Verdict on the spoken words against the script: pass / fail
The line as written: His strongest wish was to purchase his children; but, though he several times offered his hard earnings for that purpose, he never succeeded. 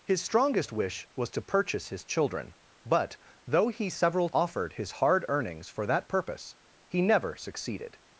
fail